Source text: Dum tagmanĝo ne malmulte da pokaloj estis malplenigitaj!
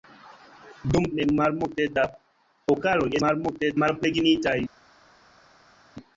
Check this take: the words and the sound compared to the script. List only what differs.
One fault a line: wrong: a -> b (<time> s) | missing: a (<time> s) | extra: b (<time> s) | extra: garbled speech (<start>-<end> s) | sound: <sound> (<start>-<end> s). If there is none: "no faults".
missing: tagmanĝo (1.0 s)
wrong: estis -> malmulte (3.2 s)